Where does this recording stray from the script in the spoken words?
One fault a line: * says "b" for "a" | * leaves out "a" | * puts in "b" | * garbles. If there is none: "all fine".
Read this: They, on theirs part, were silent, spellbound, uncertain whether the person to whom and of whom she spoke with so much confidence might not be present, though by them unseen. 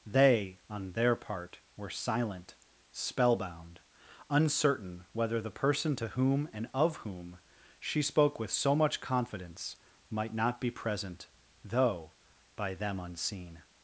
* says "their" for "theirs"